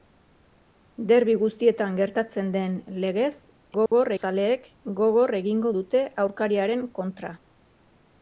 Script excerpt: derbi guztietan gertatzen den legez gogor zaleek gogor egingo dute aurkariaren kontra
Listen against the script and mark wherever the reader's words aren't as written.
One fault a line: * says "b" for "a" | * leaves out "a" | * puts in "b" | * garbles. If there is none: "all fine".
all fine